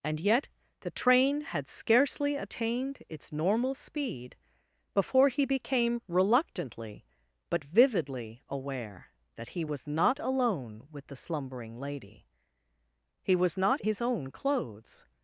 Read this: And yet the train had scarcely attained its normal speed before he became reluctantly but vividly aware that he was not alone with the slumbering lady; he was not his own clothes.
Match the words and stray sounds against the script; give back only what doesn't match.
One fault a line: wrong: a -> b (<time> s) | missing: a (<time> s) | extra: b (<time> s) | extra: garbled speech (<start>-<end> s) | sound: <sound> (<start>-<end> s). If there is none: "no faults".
no faults